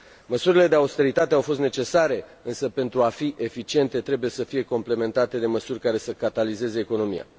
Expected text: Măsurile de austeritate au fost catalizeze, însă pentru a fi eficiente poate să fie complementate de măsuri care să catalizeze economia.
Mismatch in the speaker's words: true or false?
true